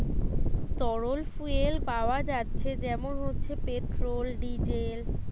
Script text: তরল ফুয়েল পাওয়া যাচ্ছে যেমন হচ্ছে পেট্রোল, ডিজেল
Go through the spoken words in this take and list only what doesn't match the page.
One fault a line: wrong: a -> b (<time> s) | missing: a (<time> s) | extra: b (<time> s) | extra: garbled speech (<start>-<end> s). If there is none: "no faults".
no faults